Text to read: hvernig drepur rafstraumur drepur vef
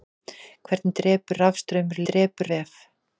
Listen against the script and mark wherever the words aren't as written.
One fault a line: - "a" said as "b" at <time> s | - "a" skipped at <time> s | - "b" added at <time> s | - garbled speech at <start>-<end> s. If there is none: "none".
none